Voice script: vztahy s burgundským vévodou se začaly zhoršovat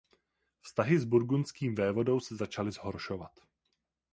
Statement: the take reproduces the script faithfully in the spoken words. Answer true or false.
true